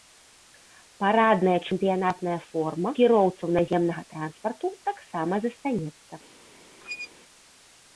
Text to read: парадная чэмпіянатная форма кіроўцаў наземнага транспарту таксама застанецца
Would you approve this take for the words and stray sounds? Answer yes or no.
no